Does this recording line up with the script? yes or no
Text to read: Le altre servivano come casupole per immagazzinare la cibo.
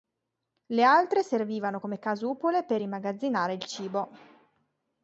no